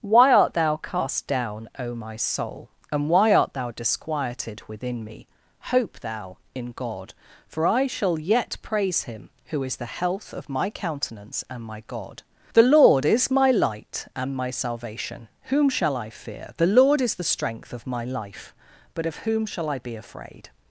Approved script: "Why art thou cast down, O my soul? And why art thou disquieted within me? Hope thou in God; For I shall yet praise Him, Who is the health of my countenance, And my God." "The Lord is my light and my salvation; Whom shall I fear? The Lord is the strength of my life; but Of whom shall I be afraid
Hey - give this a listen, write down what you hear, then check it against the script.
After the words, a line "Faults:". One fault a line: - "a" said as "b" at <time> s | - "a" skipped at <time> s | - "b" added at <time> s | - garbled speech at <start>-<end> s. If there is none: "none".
"Why art thou cast down, O my soul? And why art thou disquieted within me? Hope thou in God; For I shall yet praise Him, Who is the health of my countenance, And my God." "The Lord is my light and my salvation; Whom shall I fear? The Lord is the strength of my life; but Of whom shall I be afraid
Faults:
none